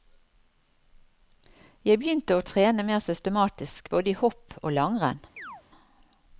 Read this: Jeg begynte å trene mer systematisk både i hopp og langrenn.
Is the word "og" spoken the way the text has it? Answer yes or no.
yes